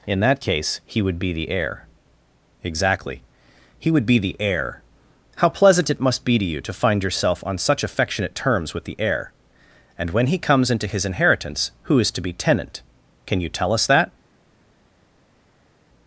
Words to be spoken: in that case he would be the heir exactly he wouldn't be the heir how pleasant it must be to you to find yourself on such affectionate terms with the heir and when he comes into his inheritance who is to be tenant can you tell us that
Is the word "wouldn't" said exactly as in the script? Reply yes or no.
no